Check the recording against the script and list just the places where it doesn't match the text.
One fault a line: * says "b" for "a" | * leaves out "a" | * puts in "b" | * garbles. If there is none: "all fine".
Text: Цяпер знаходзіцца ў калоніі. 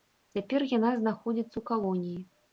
* puts in "яна"